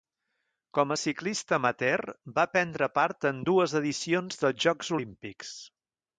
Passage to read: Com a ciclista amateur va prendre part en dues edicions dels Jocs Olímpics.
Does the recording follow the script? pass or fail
pass